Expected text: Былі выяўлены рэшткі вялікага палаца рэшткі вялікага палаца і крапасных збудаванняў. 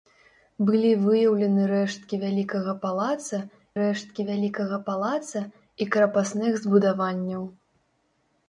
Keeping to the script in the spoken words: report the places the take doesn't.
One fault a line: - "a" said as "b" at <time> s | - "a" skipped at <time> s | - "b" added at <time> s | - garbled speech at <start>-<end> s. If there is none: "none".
none